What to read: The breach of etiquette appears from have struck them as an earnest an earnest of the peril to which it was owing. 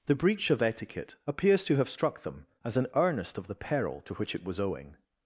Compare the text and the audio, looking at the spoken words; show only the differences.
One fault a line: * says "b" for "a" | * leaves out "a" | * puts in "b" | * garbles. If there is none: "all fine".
* says "to" for "from"
* leaves out "an earnest"